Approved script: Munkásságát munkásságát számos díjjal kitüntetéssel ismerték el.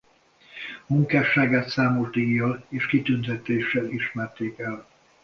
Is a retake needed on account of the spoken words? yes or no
yes